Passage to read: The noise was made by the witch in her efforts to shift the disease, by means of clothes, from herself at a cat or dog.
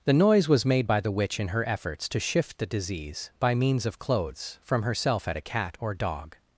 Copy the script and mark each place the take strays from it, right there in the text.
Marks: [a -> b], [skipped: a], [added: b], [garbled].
The noise was made by the witch in her efforts to shift the disease, by means of clothes, from herself at a cat or dog.